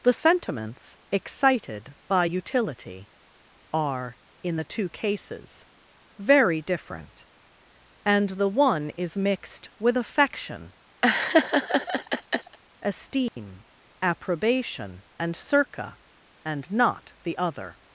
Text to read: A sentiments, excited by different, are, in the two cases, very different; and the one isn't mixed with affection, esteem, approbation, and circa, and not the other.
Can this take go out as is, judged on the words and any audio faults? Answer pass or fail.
fail